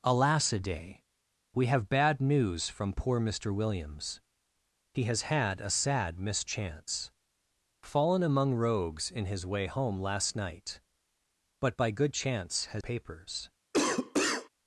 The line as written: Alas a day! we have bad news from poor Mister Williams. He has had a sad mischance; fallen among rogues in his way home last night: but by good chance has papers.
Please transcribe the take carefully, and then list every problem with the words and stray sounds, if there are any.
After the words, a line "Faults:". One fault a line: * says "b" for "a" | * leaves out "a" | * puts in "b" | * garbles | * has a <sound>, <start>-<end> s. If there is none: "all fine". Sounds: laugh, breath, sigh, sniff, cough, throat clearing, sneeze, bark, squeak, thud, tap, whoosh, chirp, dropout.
Alas a day! we have bad news from poor Mister Williams. He has had a sad mischance; fallen among rogues in his way home last night: but by good chance has papers.
Faults:
* has a cough, 13.7-14.5 s